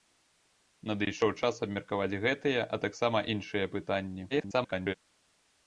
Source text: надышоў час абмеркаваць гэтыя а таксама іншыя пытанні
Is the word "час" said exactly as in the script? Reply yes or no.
yes